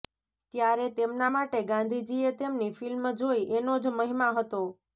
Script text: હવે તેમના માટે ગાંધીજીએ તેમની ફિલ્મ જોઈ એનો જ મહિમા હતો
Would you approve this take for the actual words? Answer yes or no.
no